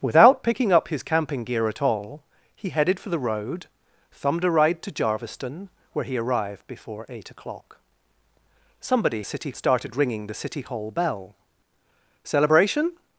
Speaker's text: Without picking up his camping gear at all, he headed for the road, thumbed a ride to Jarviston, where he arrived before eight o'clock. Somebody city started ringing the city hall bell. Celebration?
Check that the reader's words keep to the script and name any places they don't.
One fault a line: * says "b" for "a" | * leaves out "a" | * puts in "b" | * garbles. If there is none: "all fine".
all fine